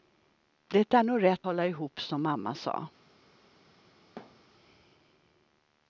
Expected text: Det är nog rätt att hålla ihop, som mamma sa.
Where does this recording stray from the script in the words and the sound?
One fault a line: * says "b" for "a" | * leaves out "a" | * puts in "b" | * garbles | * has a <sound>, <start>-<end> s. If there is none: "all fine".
* leaves out "att"
* has a thud, 4.2-4.4 s